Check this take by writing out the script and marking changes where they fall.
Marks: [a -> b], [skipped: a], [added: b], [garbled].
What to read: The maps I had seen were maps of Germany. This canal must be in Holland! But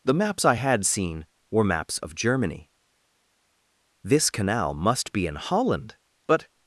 The maps I had seen were maps of Germany. This canal must be in Holland! But